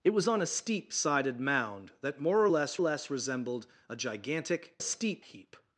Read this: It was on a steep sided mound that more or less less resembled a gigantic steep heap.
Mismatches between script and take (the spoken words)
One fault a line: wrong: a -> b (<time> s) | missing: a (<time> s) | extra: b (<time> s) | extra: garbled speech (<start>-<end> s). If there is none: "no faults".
no faults